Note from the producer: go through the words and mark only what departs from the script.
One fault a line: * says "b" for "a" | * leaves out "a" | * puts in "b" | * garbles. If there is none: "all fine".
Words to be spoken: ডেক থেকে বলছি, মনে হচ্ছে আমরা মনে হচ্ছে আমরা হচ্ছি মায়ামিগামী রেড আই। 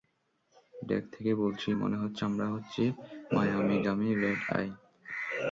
* leaves out "মনে হচ্ছে আমরা"